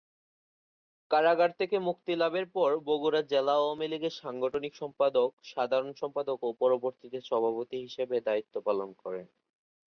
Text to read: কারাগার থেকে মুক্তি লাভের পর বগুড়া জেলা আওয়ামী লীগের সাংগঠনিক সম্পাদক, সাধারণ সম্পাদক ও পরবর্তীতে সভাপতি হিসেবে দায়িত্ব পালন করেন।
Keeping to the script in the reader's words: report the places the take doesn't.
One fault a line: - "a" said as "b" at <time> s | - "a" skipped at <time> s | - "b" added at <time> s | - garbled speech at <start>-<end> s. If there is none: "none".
none